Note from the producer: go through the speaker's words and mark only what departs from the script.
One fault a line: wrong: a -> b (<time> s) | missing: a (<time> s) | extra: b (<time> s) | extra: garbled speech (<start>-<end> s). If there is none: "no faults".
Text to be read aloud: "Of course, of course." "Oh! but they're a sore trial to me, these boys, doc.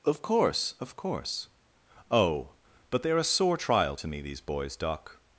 no faults